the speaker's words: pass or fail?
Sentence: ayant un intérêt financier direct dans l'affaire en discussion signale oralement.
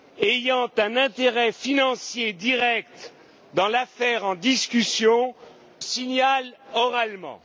pass